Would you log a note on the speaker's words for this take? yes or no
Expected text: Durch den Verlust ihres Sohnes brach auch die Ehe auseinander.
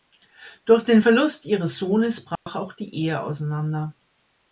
no